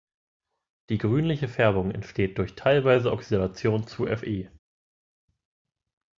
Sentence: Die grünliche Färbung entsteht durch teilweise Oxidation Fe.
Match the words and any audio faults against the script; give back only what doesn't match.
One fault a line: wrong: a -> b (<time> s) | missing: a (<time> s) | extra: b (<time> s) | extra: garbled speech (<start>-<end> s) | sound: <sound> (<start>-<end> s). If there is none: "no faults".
extra: zu (3.9 s)